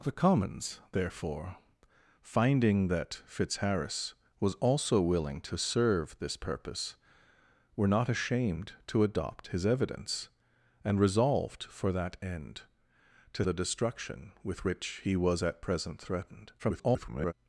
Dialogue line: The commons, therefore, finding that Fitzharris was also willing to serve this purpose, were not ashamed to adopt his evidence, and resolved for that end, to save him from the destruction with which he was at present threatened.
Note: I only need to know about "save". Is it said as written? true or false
false